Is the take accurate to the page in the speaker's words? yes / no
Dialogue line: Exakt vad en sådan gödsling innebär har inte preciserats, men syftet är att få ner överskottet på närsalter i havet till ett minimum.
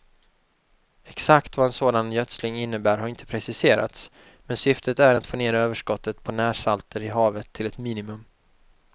yes